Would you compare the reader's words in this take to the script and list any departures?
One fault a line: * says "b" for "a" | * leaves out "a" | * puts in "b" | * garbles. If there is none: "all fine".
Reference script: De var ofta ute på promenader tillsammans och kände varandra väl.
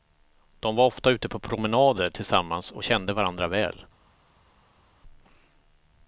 all fine